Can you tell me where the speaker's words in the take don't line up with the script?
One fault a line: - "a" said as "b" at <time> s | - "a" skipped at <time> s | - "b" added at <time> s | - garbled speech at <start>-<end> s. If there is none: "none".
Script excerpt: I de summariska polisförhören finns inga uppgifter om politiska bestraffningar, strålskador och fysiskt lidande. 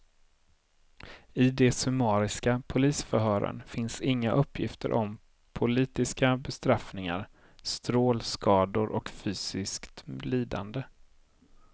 none